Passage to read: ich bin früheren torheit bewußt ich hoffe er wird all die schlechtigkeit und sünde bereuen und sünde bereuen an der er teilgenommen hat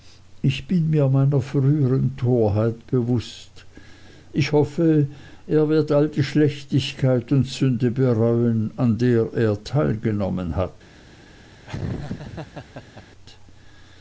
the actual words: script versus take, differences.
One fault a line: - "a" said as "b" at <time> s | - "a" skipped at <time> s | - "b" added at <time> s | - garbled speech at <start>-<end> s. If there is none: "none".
- "mir meiner" added at 0.9 s
- "und sünde bereuen" skipped at 8.7 s